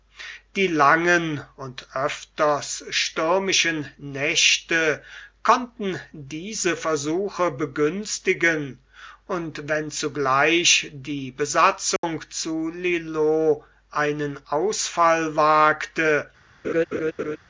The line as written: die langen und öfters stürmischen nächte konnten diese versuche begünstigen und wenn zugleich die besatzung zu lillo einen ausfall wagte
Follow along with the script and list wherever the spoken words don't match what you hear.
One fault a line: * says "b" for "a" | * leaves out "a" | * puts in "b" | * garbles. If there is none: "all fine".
all fine